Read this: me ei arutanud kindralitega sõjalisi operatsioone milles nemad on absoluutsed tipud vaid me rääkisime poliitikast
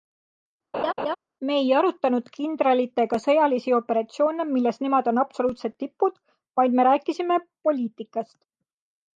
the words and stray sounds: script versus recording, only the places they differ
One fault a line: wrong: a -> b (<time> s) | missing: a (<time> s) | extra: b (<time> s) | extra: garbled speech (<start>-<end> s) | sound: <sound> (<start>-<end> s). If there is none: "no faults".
sound: laugh (0.7-1.2 s)